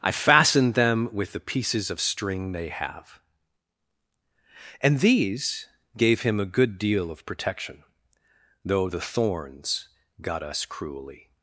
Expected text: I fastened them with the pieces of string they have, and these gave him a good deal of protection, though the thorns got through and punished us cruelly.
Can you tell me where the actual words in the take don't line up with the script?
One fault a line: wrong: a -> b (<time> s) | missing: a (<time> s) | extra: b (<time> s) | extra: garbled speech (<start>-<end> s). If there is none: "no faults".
missing: through and punished (10.4 s)